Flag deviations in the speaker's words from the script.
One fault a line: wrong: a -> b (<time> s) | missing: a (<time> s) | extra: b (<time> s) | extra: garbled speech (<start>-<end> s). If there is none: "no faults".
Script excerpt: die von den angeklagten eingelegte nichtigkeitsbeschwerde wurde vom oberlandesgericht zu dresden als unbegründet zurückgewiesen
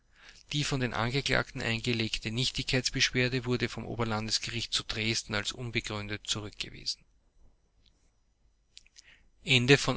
no faults